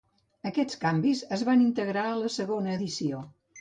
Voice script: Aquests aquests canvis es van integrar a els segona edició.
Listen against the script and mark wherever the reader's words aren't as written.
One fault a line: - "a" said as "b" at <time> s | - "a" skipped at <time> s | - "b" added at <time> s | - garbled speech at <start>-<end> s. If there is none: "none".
- "aquests" skipped at 0.8 s
- "els" said as "la" at 2.2 s